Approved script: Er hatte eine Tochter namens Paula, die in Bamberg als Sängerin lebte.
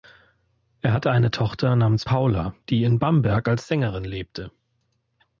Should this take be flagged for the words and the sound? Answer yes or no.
no